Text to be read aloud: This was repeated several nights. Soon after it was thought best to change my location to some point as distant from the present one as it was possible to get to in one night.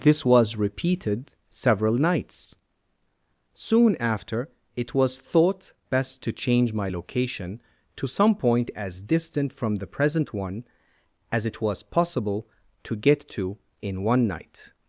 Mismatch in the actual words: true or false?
false